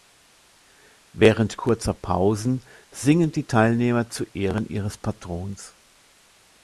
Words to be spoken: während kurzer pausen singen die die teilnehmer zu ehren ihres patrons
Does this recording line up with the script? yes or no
no